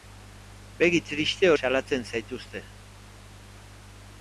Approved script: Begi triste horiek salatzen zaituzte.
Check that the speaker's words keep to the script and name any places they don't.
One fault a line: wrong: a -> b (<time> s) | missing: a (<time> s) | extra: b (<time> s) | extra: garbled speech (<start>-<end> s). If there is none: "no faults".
missing: horiek (1.5 s)